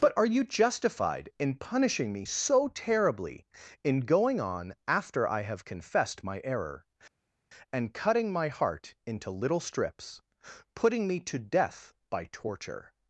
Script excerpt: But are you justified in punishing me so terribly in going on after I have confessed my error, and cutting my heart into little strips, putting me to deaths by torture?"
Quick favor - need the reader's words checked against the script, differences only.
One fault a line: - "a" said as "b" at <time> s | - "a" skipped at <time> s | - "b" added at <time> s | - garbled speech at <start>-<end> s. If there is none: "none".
- "deaths" said as "death" at 11.4 s